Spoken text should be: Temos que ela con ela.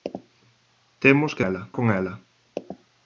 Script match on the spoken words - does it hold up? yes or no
yes